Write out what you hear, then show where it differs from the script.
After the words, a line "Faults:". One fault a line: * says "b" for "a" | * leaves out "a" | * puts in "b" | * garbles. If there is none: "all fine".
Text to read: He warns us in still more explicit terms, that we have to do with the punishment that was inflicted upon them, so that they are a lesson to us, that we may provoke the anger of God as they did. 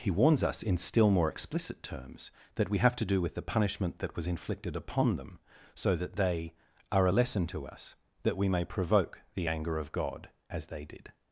He warns us in still more explicit terms, that we have to do with the punishment that was inflicted upon them, so that they are a lesson to us, that we may provoke the anger of God as they did.
Faults:
all fine